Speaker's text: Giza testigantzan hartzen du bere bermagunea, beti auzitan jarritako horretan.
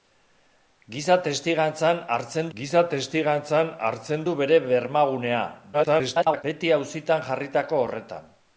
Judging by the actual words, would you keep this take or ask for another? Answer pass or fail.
fail